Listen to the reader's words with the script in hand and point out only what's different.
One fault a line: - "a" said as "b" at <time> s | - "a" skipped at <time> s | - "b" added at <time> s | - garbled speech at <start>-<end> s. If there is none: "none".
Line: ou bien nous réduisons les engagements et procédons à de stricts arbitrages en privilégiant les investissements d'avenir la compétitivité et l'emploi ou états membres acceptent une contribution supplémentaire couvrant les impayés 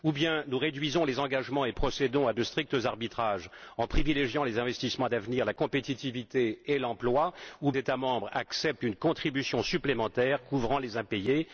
none